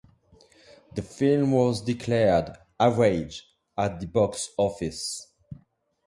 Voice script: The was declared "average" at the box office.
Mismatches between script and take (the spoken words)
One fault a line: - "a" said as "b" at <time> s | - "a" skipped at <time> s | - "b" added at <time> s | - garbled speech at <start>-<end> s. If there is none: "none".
- "film" added at 1.0 s